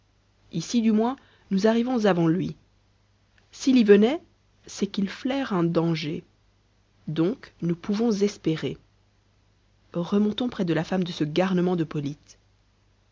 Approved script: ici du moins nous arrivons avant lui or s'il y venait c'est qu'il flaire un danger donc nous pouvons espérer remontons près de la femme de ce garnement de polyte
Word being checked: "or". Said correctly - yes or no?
no